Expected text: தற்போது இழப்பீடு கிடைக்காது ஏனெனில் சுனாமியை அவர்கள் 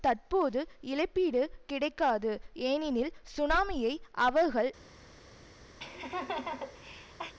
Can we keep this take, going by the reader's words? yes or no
yes